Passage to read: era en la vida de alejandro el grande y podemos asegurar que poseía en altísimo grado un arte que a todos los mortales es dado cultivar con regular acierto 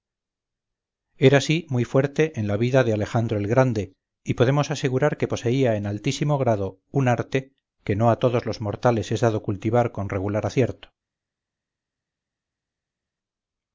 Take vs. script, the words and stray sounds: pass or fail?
fail